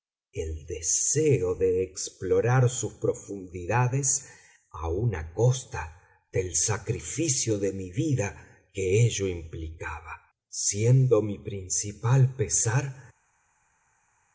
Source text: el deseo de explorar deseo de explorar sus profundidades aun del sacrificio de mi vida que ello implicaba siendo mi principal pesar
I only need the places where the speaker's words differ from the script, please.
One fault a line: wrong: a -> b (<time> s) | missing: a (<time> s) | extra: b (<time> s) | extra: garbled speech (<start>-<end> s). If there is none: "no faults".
missing: deseo de explorar (2.7 s)
extra: a costa (5.1 s)